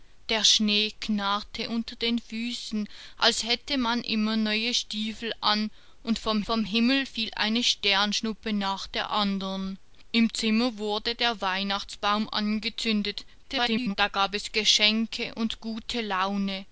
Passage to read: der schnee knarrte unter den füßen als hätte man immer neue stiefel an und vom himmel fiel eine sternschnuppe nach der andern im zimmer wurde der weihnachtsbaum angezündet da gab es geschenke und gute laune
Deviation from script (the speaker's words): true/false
true